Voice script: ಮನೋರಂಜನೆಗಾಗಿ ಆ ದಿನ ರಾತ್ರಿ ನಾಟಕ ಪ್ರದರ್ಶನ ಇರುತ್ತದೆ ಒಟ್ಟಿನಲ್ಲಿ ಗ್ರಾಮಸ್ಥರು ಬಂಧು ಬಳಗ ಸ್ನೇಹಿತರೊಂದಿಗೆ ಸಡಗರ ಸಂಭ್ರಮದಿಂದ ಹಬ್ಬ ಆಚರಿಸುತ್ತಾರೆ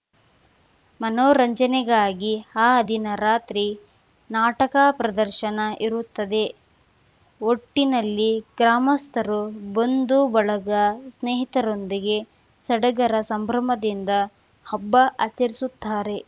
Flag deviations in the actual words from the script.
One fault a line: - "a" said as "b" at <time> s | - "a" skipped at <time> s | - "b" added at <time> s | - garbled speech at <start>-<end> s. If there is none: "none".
none